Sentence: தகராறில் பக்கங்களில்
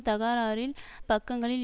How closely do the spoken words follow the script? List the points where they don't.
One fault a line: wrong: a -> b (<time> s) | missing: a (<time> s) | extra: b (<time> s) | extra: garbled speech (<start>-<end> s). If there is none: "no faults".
no faults